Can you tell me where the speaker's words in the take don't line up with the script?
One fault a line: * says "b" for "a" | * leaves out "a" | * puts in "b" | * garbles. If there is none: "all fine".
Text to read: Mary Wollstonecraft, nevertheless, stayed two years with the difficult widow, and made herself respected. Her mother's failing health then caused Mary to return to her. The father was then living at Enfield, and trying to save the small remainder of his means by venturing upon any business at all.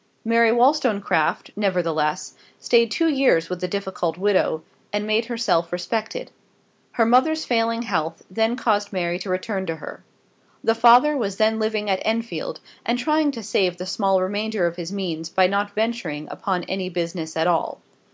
* puts in "not"